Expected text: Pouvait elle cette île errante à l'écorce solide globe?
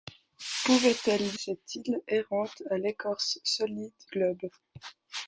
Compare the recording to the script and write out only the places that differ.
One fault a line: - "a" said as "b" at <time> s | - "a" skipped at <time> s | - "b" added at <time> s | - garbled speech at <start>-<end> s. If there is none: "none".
none